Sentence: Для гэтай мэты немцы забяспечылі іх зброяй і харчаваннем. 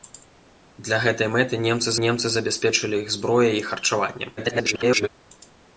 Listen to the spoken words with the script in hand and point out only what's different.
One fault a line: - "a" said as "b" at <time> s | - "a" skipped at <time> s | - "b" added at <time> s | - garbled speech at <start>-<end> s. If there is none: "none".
- "немцы" added at 2.0 s
- garbled speech at 4.4-5.1 s